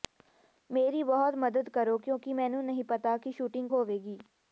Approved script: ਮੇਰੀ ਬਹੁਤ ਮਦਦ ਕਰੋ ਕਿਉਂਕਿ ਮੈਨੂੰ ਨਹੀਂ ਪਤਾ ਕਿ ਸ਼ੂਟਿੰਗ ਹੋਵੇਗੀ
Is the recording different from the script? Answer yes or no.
no